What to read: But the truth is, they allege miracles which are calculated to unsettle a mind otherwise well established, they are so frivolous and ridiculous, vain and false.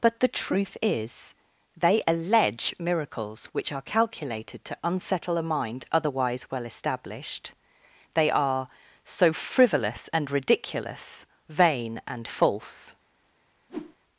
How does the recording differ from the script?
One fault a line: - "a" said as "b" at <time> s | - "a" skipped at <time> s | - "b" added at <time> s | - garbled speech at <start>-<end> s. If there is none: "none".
none